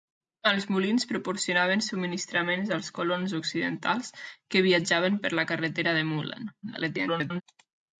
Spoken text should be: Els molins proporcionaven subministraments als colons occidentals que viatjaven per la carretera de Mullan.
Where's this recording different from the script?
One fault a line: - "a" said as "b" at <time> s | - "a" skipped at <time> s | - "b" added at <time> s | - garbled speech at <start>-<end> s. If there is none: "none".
- garbled speech at 6.6-7.4 s